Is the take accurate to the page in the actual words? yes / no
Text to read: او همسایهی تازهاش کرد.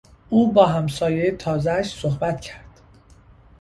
no